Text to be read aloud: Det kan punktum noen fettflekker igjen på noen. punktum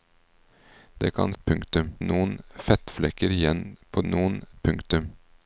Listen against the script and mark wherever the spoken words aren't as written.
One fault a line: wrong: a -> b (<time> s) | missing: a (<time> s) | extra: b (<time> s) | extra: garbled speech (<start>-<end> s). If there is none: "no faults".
no faults